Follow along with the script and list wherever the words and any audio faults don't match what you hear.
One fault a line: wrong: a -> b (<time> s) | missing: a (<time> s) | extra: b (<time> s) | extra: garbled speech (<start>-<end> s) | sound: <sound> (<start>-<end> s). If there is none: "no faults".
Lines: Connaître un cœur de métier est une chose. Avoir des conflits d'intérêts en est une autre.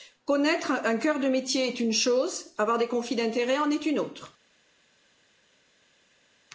no faults